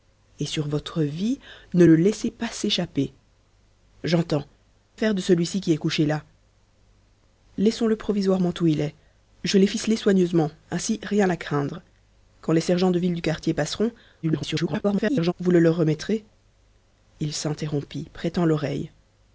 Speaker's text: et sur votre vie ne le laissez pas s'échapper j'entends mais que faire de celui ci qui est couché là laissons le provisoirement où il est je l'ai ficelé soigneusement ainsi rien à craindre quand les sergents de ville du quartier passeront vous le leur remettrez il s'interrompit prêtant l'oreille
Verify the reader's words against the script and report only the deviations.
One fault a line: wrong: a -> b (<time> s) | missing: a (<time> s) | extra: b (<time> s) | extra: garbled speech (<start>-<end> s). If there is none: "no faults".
missing: mais que (4.5 s)
extra: garbled speech (14.2-15.3 s)